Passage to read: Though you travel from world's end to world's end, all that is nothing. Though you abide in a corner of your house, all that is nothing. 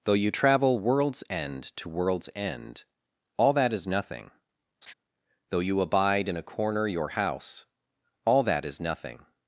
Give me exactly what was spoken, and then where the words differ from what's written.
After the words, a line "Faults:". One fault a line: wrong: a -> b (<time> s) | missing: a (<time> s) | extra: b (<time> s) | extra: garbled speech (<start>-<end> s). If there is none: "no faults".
Though you travel world's end to world's end, all that is nothing. Though you abide in a corner your house, all that is nothing.
Faults:
missing: from (0.8 s)
missing: of (6.9 s)